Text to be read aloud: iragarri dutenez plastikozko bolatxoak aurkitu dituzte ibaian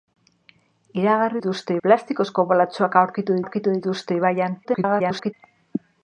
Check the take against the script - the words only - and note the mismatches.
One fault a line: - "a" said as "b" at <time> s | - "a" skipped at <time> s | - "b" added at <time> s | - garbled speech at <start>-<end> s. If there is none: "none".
- "dutenez" said as "dituzte" at 1.4 s
- "aurkitu" added at 3.4 s
- garbled speech at 4.6-5.3 s